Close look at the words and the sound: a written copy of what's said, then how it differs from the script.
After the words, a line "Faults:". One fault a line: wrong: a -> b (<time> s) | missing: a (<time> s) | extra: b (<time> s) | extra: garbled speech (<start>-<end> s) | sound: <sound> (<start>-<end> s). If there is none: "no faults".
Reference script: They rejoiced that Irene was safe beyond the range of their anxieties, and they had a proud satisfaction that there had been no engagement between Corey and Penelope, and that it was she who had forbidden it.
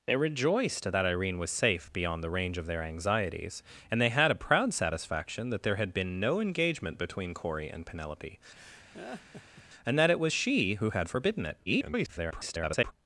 They rejoiced that Irene was safe beyond the range of their anxieties, and they had a proud satisfaction that there had been no engagement between Corey and Penelope, and that it was she who had forbidden it. [garbled]
Faults:
sound: laugh (8.5-9.6 s)
extra: garbled speech (11.7-12.9 s)